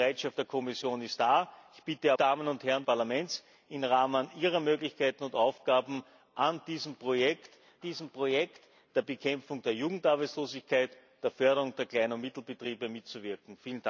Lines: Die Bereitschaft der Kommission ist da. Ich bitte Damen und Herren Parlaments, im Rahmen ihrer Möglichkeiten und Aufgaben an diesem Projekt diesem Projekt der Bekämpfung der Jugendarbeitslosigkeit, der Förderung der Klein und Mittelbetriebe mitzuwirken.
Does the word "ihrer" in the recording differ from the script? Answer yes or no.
no